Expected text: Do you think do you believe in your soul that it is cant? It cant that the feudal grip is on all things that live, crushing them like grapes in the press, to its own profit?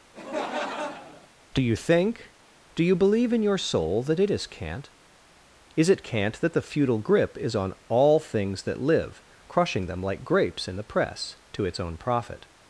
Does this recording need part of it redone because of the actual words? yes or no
yes